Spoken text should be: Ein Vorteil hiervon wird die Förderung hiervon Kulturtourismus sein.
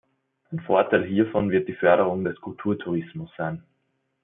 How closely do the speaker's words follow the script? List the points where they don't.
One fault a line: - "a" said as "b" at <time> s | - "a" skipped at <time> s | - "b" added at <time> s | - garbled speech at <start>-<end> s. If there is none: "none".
- "hiervon" said as "des" at 2.2 s